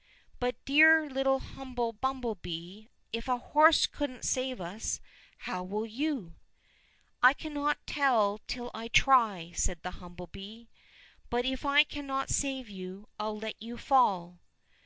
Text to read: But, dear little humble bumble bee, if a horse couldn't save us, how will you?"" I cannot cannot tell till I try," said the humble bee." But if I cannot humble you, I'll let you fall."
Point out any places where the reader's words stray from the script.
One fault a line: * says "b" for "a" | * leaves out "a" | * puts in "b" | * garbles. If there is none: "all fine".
* leaves out "cannot"
* says "save" for "humble"